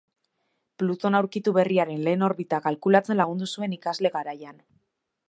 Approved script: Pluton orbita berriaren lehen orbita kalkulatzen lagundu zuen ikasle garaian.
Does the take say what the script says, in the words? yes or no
no